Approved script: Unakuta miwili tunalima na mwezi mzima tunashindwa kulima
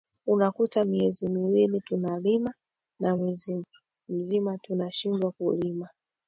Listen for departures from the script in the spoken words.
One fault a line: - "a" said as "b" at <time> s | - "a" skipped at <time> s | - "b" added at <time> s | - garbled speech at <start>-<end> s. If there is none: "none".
- "miezi" added at 0.8 s